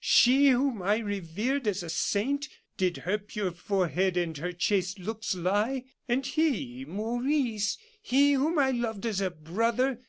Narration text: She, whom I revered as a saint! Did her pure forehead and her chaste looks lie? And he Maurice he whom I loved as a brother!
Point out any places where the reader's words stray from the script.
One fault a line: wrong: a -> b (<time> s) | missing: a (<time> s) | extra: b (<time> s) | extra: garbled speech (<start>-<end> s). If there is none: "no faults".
no faults